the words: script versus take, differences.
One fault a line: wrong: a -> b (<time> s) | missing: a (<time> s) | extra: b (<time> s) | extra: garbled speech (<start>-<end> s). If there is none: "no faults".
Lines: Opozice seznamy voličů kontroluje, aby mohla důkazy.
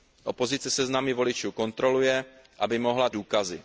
no faults